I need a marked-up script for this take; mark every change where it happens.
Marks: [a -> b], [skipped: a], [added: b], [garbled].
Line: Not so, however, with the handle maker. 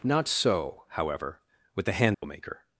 Not so, however, with the handle maker.